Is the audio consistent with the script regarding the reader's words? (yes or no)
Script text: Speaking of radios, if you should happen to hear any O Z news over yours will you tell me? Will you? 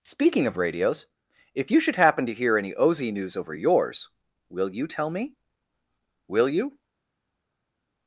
yes